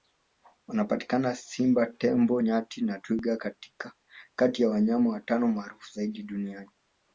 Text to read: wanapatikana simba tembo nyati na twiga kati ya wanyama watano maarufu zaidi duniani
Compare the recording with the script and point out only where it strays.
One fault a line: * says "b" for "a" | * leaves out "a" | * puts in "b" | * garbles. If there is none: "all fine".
all fine